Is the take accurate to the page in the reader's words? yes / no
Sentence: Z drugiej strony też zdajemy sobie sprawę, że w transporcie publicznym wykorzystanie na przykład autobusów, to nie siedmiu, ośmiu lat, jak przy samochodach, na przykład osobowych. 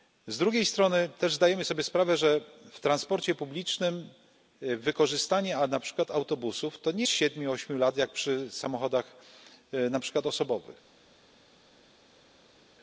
yes